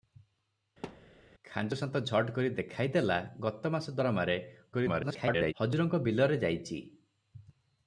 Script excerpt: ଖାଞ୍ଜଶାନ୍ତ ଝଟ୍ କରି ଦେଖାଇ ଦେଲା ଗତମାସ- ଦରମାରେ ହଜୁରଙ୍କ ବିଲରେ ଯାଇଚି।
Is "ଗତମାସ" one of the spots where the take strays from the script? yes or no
no